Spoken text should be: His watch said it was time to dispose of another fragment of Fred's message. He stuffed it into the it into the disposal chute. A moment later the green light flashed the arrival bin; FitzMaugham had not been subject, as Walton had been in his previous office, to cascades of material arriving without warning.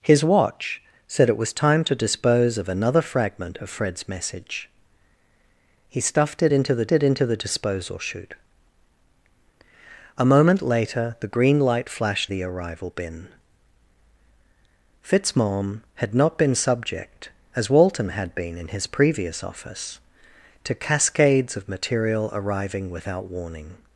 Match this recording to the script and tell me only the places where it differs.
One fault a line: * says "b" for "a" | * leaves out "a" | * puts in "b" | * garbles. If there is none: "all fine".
all fine